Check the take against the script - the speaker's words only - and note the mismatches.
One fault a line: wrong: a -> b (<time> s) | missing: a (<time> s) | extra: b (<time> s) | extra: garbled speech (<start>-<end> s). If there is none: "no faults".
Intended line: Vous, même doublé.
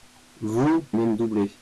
no faults